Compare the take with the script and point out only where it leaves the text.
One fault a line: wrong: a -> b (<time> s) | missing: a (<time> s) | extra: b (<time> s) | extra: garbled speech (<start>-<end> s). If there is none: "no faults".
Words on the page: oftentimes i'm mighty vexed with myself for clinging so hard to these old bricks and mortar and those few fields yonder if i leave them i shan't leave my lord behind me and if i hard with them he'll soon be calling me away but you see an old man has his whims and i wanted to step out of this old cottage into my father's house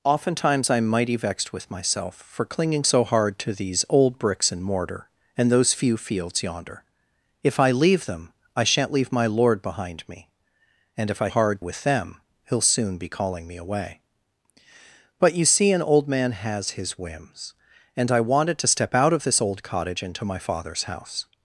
no faults